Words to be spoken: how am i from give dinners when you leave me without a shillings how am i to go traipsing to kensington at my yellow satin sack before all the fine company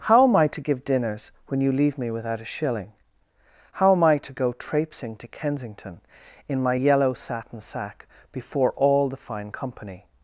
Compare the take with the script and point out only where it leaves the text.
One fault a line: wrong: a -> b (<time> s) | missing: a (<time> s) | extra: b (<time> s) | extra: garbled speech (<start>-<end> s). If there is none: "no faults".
wrong: from -> to (0.5 s)
wrong: shillings -> shilling (2.5 s)
wrong: at -> in (6.5 s)